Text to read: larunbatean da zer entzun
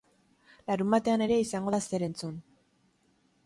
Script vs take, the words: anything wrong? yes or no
yes